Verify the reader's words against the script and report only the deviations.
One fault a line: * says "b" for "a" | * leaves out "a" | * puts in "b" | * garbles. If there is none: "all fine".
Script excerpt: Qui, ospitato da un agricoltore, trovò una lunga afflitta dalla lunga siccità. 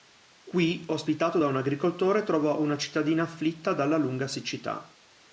* says "cittadina" for "lunga"